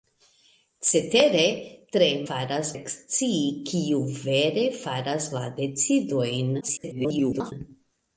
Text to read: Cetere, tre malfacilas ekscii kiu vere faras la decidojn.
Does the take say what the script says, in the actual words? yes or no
no